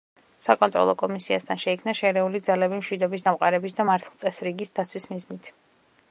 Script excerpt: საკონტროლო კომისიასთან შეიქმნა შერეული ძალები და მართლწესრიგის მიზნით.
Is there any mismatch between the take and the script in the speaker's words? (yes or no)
yes